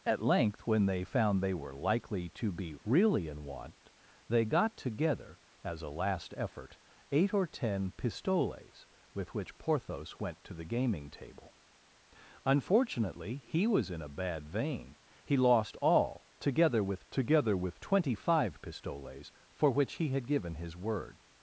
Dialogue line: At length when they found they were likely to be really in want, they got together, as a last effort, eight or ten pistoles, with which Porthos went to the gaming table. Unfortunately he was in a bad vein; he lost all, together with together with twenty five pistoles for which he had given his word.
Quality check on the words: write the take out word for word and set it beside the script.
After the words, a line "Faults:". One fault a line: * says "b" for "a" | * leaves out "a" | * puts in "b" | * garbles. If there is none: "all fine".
At length when they found they were likely to be really in want, they got together, as a last effort, eight or ten pistoles, with which Porthos went to the gaming table. Unfortunately he was in a bad vein; he lost all, together with together with twenty five pistoles for which he had given his word.
Faults:
all fine